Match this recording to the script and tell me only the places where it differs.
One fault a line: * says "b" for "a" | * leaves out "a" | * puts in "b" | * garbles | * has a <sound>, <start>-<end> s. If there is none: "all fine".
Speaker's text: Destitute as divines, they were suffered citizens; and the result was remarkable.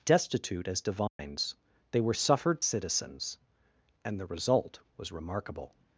* has a dropout, 1.1-1.2 s